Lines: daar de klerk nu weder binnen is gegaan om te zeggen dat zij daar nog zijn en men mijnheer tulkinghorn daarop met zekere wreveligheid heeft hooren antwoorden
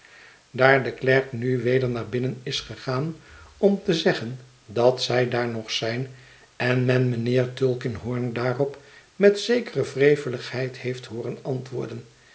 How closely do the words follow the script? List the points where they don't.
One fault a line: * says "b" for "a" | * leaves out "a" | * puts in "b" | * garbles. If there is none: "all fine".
* puts in "naar"